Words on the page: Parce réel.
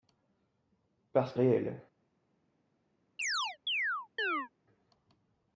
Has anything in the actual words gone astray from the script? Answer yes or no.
no